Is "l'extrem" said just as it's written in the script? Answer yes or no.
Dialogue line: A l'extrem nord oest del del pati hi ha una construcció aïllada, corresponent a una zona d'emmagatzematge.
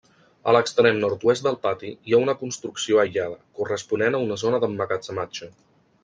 yes